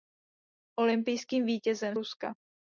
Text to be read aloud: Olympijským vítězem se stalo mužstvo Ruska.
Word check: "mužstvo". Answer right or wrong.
wrong